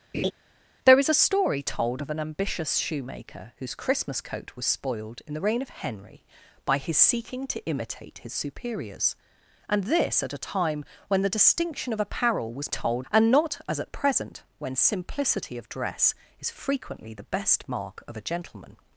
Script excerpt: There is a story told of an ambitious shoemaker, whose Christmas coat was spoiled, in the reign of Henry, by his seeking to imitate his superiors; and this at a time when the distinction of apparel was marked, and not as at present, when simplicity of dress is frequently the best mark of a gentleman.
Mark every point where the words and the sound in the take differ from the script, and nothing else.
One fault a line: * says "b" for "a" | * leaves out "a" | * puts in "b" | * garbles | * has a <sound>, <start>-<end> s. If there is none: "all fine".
* has a laugh, 0.1-0.3 s
* says "told" for "marked"